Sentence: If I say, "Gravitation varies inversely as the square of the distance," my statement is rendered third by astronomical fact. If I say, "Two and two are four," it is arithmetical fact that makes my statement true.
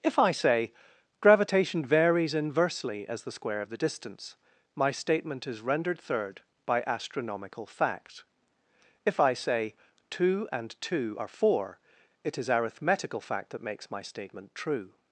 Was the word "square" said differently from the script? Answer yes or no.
no